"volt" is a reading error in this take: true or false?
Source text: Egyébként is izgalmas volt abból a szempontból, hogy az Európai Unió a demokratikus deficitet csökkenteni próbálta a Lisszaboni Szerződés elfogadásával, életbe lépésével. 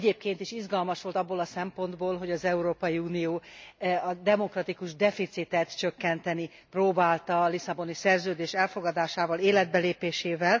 false